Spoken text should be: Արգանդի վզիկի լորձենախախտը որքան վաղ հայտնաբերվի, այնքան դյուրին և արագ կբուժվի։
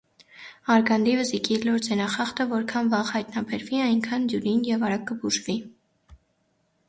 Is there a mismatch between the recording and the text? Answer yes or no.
no